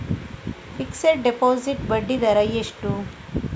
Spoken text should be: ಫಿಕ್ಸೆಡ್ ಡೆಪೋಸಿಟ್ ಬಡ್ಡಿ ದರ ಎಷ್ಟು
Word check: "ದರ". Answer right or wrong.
right